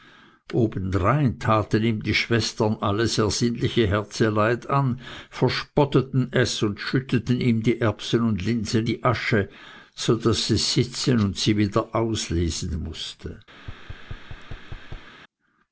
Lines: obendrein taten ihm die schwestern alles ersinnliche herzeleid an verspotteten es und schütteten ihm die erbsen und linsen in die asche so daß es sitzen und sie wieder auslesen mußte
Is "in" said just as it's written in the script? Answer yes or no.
no